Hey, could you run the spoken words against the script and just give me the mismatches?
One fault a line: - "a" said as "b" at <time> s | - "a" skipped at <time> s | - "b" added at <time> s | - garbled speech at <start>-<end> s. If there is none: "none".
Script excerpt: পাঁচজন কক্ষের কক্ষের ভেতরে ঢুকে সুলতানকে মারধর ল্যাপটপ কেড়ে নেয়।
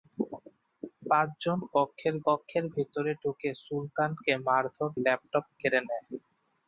none